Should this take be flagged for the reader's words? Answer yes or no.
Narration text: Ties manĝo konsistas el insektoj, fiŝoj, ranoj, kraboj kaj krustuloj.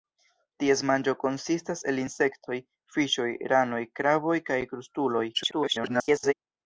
yes